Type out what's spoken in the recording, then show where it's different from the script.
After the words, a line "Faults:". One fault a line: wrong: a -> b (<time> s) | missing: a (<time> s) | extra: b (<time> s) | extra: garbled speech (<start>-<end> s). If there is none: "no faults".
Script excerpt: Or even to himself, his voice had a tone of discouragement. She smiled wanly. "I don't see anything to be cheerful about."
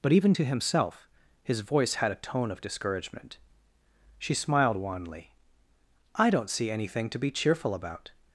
But even to himself, his voice had a tone of discouragement. She smiled wanly. "I don't see anything to be cheerful about."
Faults:
wrong: Or -> But (0.0 s)